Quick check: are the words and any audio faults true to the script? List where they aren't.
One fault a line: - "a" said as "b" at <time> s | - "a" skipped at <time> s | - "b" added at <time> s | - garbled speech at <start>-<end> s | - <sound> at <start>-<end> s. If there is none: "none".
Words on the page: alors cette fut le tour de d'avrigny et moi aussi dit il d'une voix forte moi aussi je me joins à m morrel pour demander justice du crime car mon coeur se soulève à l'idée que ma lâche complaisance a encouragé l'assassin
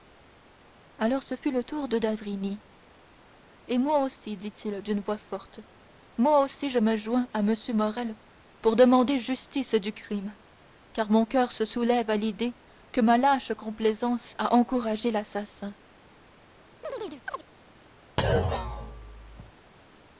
- "cette" said as "ce" at 1.2 s
- chirp at 16.8-17.5 s
- thud at 18.2-19.5 s